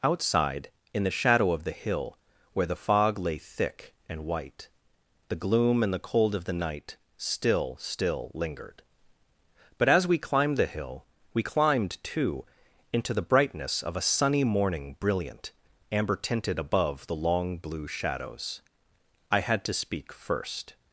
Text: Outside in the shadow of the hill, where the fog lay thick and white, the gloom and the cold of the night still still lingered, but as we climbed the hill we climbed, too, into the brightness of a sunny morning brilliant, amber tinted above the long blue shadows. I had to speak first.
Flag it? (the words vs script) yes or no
no